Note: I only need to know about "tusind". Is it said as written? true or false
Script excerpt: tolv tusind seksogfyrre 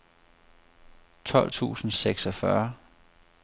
true